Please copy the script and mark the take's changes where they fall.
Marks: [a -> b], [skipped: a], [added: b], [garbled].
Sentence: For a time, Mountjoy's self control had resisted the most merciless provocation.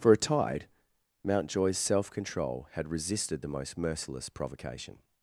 For a [time, -> tide] Mountjoy's self control had resisted the most merciless provocation.